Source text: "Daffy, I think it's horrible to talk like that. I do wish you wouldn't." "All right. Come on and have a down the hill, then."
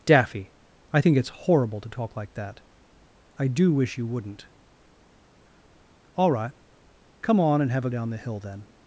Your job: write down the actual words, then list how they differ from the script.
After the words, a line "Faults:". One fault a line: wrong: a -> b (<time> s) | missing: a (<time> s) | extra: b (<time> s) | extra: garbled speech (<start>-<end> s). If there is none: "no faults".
"Daffy, I think it's horrible to talk like that. I do wish you wouldn't." "All right. Come on and have a down the hill, then."
Faults:
no faults